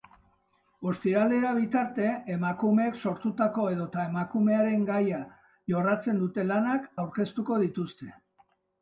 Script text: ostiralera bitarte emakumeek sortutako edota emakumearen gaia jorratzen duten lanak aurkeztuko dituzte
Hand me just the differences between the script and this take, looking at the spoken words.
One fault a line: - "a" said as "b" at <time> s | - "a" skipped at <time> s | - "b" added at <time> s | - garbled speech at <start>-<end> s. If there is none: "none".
none